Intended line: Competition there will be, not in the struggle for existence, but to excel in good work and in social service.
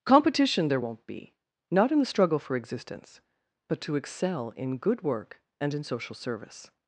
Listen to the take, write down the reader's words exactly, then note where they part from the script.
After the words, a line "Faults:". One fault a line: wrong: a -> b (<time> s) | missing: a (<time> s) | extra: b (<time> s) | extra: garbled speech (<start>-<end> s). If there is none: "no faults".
Competition there won't be, not in the struggle for existence, but to excel in good work and in social service.
Faults:
wrong: will -> won't (0.8 s)